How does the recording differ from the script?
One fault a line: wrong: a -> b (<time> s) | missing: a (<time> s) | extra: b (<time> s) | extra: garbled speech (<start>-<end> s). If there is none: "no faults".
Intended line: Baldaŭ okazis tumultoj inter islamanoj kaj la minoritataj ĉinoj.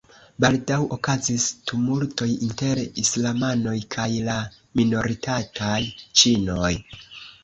no faults